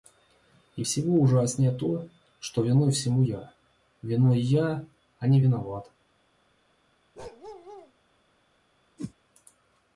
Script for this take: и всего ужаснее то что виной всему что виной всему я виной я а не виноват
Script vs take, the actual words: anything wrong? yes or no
yes